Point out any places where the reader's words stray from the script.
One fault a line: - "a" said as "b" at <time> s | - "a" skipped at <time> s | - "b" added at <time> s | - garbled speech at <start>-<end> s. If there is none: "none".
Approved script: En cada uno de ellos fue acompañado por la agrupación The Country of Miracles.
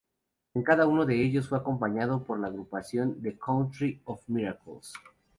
none